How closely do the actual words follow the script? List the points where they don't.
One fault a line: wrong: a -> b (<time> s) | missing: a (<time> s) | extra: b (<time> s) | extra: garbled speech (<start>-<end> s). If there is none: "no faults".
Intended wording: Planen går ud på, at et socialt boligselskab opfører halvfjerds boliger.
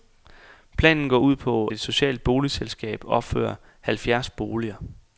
missing: at (1.7 s)